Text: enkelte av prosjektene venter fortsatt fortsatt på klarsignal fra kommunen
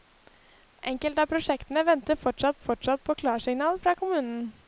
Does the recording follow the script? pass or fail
pass